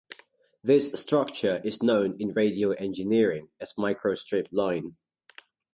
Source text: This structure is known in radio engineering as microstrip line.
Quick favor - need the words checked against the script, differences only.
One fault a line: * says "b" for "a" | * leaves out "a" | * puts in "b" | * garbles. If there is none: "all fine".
all fine